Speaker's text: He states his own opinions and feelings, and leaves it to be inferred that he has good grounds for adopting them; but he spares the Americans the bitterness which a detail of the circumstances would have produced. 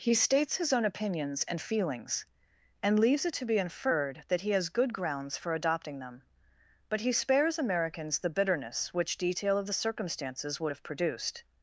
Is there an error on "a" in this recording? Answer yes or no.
yes